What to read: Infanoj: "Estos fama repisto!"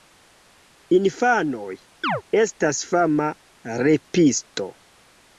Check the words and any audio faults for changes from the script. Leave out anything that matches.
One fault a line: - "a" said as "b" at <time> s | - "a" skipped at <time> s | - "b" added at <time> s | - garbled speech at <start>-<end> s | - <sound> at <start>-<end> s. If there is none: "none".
- chirp at 2.0-2.2 s
- "Estos" said as "Estas" at 2.5 s